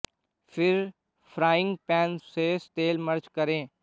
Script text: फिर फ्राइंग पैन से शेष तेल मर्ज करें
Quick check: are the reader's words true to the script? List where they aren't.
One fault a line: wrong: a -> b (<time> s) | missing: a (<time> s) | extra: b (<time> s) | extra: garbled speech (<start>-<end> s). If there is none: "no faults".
missing: से (2.2 s)